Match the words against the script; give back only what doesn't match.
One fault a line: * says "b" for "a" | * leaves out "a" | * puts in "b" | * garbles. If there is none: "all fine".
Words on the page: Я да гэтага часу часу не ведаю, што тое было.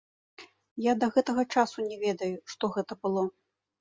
* leaves out "часу"
* says "гэта" for "тое"